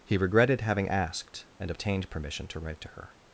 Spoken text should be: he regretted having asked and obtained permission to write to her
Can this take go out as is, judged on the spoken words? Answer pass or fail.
pass